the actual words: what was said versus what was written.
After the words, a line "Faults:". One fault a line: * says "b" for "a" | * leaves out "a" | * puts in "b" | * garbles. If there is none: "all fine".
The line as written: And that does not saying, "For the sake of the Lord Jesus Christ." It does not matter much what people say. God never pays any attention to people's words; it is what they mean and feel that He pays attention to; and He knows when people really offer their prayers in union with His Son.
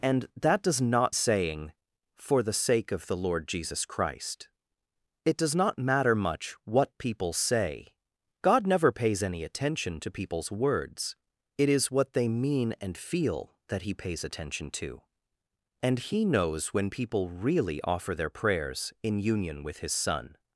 And that does not saying, "For the sake of the Lord Jesus Christ." It does not matter much what people say. God never pays any attention to people's words; it is what they mean and feel that He pays attention to; and He knows when people really offer their prayers in union with His Son.
Faults:
all fine